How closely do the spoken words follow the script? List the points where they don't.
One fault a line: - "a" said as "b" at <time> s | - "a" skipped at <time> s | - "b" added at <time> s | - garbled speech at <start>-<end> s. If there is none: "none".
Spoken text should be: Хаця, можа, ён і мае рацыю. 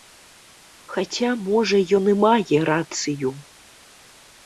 none